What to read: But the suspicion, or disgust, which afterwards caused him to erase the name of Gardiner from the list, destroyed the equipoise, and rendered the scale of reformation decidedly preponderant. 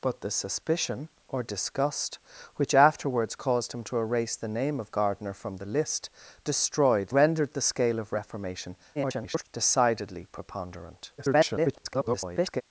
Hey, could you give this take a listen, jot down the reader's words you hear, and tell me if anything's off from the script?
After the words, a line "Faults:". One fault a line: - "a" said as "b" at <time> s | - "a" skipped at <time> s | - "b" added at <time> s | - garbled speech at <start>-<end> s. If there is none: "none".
But the suspicion, or disgust, which afterwards caused him to erase the name of Gardiner from the list, destroyed rendered the scale of reformation [garbled] decidedly preponderant. [garbled]
Faults:
- "the equipoise and" skipped at 7.1 s
- garbled speech at 8.9-9.5 s
- garbled speech at 11.2-12.6 s